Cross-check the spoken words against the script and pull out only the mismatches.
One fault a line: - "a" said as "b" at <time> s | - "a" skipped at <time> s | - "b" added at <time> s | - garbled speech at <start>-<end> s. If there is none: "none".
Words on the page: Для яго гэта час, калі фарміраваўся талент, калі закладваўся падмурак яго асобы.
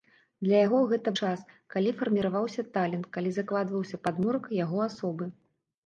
none